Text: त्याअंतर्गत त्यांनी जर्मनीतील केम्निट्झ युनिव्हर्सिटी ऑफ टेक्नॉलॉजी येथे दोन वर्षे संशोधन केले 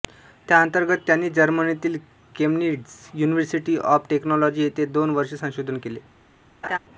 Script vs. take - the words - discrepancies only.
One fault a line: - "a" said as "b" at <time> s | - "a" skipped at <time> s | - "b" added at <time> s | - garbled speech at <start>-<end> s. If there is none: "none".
none